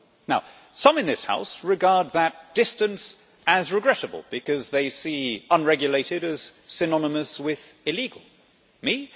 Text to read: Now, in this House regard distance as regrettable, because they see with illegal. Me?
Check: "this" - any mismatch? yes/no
no